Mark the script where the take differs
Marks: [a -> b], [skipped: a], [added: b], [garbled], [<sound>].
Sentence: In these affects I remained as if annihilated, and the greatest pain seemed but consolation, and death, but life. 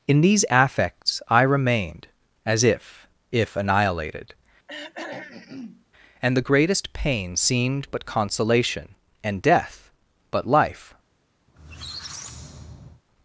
In these affects I remained as if [added: if] annihilated, [throat clearing] and the greatest pain seemed but consolation, and death, but life. [squeak]